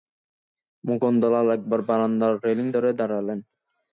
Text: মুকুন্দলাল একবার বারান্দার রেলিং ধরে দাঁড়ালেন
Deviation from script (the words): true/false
false